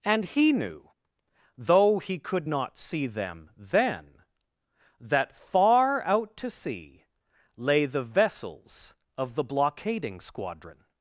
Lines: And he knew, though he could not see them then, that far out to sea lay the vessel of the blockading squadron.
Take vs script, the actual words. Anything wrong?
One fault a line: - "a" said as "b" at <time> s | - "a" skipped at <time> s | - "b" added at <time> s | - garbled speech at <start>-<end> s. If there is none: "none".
- "vessel" said as "vessels" at 8.0 s